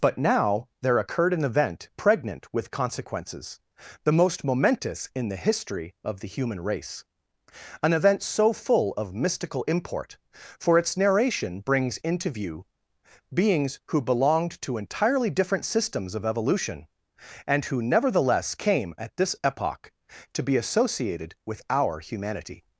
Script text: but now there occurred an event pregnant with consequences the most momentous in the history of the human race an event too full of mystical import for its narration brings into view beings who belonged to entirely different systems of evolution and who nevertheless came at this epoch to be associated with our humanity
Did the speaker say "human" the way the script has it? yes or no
yes